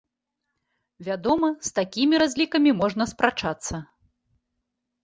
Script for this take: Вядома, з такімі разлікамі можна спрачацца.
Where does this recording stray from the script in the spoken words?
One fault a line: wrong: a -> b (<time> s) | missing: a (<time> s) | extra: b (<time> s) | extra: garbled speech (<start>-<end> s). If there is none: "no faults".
no faults